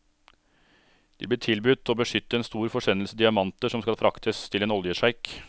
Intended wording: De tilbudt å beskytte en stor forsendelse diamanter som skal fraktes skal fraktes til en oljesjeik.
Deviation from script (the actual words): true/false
true